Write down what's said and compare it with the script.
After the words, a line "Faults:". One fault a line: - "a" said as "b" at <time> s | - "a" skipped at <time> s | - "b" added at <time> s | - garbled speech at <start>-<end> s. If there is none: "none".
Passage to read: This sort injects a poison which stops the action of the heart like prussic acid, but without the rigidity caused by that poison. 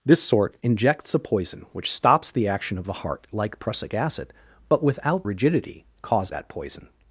This sort injects a poison which stops the action of the heart like prussic acid, but without rigidity caused that poison.
Faults:
- "the" skipped at 5.3 s
- "by" skipped at 6.3 s